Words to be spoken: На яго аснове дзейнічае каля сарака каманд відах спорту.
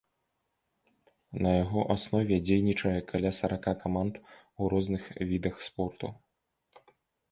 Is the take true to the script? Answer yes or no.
no